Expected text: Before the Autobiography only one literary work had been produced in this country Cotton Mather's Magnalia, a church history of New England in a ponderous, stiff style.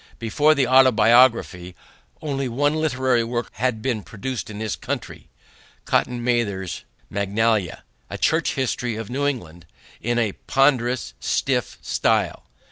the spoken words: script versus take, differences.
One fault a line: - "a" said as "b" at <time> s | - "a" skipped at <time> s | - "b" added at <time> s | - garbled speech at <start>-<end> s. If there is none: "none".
none